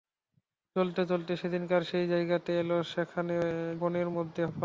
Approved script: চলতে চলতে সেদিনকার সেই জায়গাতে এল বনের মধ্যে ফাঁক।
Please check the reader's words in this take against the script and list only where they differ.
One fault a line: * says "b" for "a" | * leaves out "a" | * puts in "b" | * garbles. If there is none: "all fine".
all fine